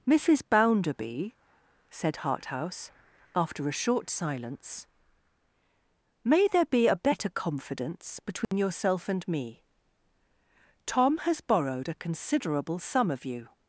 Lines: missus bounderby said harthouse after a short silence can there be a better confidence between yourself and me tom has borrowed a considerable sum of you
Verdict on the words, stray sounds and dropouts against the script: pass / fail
fail